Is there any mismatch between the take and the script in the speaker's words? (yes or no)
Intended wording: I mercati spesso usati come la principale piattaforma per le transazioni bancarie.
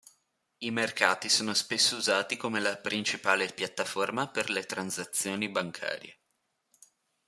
yes